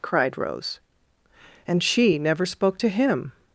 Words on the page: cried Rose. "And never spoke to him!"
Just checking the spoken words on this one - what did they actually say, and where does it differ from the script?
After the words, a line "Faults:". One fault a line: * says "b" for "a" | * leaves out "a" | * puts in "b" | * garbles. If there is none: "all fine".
cried Rose. "And she never spoke to him!"
Faults:
* puts in "she"